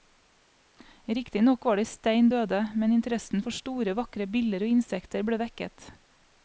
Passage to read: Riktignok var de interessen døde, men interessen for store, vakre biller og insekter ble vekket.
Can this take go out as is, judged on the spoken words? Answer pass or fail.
fail